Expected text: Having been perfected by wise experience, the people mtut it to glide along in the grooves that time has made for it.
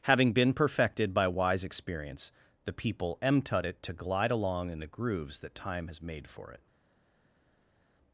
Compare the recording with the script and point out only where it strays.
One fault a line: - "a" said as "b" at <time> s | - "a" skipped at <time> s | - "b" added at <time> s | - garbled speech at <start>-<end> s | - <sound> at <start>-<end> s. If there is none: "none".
none